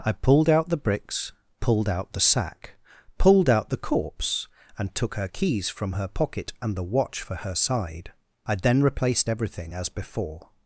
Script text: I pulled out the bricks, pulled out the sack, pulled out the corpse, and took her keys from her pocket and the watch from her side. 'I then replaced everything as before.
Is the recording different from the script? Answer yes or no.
yes